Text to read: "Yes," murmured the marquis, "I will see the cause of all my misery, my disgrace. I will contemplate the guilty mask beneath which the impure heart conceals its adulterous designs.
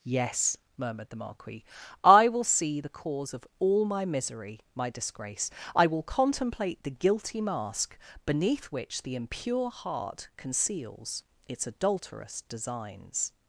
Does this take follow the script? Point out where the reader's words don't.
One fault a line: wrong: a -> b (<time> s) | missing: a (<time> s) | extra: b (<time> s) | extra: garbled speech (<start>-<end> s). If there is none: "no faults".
no faults